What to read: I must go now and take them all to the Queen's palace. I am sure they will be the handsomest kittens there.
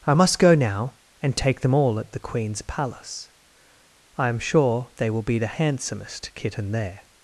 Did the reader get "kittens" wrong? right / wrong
wrong